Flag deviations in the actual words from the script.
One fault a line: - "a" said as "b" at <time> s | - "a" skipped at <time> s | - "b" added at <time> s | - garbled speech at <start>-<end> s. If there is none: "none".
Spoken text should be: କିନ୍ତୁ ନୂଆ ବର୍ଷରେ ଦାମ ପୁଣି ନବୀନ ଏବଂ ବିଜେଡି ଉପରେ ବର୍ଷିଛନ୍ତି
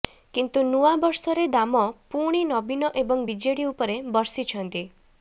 none